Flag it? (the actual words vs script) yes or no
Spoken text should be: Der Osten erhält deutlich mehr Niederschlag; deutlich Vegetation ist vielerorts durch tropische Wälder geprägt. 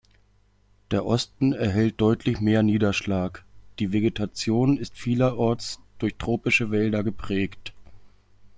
yes